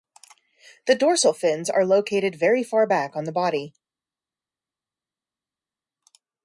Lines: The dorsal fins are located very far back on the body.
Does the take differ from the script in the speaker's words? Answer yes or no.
no